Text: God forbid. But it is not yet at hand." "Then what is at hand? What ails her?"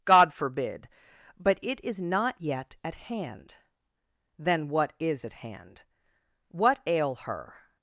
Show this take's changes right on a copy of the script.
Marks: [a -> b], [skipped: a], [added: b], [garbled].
God forbid. But it is not yet at hand." "Then what is at hand? What [ails -> ail] her?"